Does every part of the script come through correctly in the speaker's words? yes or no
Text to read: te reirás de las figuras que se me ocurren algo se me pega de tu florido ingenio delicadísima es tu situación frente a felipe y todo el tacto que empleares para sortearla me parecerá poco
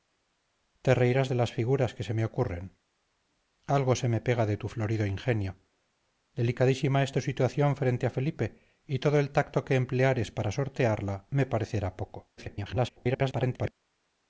no